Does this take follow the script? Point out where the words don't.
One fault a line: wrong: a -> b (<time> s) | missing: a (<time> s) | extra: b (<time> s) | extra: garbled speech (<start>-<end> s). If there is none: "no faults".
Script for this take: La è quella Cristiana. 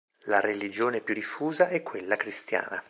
extra: religione più diffusa (0.4 s)